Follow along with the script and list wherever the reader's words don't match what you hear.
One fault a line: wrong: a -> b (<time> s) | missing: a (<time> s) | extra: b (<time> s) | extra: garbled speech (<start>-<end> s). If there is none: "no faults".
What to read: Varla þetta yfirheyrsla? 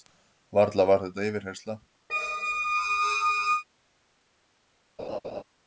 extra: var (0.9 s)